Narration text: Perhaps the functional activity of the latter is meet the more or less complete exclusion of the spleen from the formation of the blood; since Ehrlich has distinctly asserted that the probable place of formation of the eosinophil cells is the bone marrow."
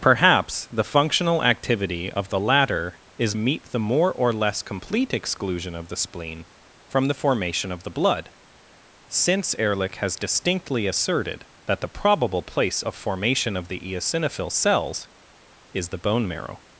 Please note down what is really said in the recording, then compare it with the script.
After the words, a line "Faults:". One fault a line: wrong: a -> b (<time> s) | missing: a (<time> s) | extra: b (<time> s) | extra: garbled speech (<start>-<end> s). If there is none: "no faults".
Perhaps the functional activity of the latter is meet the more or less complete exclusion of the spleen from the formation of the blood; since Ehrlich has distinctly asserted that the probable place of formation of the eosinophil cells is the bone marrow."
Faults:
no faults